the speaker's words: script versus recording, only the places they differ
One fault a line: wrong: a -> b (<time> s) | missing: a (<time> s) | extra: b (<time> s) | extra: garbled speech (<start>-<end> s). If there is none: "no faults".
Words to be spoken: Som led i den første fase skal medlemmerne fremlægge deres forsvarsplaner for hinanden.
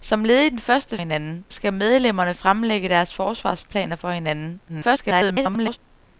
wrong: fase -> hinanden (1.0 s)
extra: garbled speech (4.7-5.8 s)